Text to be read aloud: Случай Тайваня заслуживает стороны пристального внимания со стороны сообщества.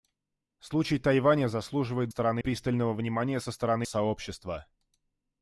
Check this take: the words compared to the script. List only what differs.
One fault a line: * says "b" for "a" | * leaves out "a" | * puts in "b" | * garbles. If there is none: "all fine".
all fine